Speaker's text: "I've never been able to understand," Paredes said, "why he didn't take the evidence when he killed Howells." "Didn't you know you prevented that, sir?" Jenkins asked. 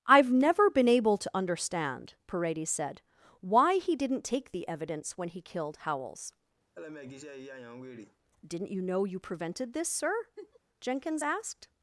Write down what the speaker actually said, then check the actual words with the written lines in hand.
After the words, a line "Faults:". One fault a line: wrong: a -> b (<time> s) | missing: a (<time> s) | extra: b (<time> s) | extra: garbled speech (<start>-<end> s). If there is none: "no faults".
"I've never been able to understand," Paredes said, "why he didn't take the evidence when he killed Howells." "Didn't you know you prevented this, sir?" Jenkins asked.
Faults:
wrong: that -> this (9.7 s)